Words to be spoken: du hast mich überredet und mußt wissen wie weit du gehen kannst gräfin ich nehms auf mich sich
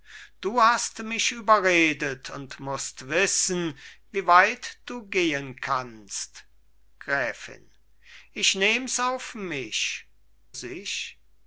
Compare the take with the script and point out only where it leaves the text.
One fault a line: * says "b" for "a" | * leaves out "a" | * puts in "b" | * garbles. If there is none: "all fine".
all fine